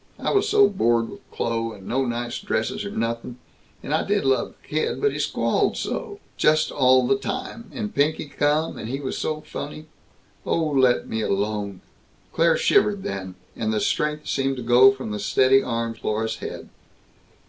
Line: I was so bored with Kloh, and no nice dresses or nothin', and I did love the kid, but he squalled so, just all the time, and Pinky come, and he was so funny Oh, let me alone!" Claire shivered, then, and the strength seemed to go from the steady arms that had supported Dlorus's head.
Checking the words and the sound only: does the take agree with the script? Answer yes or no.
no